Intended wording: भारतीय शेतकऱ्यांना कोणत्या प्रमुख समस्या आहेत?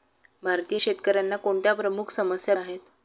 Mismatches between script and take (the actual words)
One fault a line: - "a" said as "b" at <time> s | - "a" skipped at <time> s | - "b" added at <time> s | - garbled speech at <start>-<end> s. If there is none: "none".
none